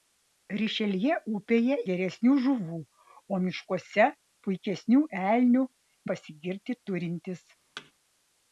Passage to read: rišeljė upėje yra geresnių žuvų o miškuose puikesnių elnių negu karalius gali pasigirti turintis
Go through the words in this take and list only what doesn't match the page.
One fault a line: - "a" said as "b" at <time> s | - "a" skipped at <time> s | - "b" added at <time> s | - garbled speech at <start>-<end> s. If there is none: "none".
- "yra" skipped at 1.8 s
- "negu karalius gali" skipped at 5.7 s